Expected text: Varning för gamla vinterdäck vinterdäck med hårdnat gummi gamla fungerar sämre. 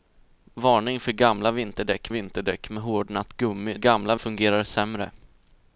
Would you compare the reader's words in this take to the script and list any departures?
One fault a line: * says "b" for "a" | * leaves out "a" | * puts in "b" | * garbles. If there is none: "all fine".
all fine